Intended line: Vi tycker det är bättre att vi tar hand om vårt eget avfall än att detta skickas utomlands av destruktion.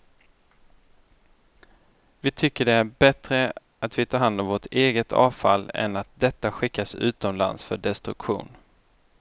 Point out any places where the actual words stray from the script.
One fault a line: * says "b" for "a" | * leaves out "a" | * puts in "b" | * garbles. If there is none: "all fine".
* says "för" for "av"